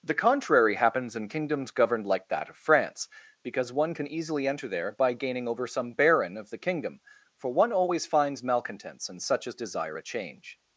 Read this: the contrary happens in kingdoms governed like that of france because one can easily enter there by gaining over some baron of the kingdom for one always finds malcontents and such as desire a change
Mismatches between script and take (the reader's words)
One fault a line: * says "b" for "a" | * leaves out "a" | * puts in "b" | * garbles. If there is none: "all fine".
all fine